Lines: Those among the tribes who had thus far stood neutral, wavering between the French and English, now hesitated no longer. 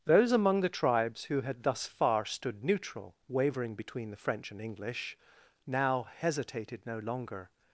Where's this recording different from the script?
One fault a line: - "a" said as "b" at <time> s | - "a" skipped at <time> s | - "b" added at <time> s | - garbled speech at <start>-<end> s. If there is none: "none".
none